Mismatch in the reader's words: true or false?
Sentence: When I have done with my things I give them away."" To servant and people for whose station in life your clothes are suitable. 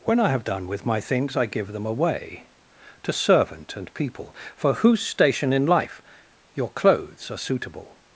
false